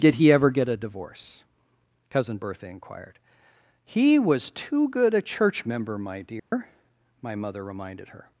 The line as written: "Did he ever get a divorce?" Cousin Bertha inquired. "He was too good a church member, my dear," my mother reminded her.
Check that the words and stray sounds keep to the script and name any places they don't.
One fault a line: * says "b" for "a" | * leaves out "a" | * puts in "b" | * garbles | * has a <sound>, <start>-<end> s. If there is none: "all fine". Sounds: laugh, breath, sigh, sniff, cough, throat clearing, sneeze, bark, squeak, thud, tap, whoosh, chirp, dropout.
* has a dropout, 6.4-6.5 s